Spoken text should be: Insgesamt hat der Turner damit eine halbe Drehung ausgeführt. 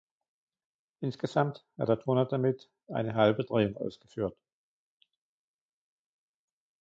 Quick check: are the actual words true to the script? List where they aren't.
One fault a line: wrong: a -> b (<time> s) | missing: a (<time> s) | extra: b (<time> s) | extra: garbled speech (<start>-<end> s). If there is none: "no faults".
no faults